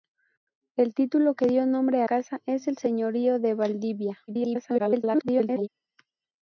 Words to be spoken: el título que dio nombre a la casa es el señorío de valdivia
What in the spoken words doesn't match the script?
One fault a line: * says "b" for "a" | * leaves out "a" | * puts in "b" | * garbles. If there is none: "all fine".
* leaves out "la"
* garbles